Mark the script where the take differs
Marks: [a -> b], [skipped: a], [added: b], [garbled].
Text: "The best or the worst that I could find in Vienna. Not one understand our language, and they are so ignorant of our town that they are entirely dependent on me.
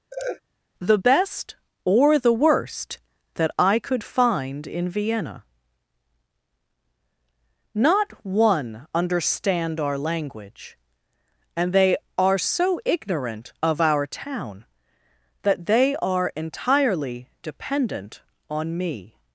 "The best or the worst that I could find in Vienna. Not one understand our language, and they are so ignorant of our town that they are entirely dependent on me.